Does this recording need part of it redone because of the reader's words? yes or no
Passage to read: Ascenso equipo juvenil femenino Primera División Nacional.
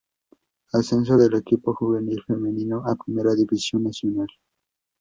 yes